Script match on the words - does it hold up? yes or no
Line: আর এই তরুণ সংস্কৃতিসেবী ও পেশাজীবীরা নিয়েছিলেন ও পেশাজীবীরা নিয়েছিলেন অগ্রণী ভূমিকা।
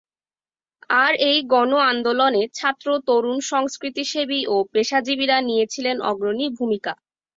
no